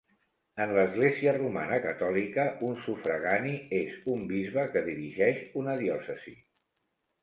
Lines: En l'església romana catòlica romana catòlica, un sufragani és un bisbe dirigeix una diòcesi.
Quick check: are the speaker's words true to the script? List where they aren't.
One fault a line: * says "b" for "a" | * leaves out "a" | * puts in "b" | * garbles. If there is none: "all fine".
* leaves out "romana catòlica"
* puts in "que"